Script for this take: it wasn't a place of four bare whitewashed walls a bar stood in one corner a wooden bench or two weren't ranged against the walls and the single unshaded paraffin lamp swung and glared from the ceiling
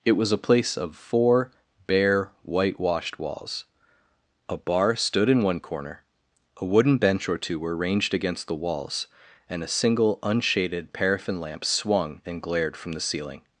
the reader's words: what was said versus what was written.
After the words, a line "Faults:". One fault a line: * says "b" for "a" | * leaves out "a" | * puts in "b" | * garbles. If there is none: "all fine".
it was a place of four bare whitewashed walls a bar stood in one corner a wooden bench or two were ranged against the walls and a single unshaded paraffin lamp swung and glared from the ceiling
Faults:
* says "was" for "wasn't"
* says "were" for "weren't"
* says "a" for "the"